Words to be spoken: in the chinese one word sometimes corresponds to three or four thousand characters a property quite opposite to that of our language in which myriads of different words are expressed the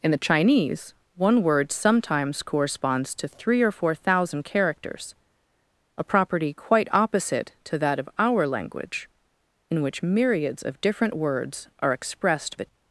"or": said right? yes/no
yes